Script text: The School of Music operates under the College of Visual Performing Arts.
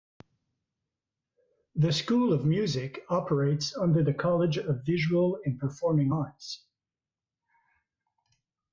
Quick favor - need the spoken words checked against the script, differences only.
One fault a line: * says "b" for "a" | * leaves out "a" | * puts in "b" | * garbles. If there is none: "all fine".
* puts in "and"